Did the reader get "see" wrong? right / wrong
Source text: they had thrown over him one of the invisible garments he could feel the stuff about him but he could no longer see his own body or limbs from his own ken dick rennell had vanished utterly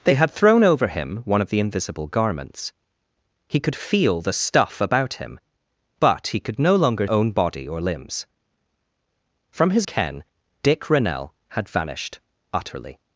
wrong